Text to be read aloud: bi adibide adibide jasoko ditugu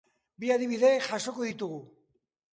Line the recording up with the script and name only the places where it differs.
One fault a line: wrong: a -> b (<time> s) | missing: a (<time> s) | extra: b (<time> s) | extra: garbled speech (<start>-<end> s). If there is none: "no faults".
missing: adibide (0.9 s)